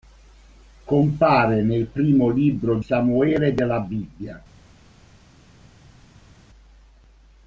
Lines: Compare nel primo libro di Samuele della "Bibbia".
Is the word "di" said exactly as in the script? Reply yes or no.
no